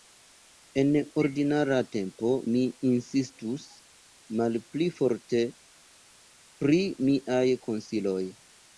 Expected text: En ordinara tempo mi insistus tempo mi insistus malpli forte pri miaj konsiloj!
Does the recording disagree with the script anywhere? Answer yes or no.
yes